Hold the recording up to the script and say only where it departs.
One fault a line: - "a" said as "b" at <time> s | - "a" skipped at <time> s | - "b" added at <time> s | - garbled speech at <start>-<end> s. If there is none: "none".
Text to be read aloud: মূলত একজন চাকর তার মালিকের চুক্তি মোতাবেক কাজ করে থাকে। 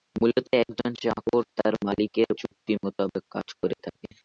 none